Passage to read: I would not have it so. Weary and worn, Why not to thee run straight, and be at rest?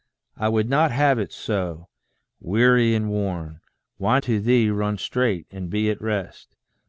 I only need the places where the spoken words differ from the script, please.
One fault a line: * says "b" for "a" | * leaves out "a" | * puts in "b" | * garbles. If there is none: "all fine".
* leaves out "not"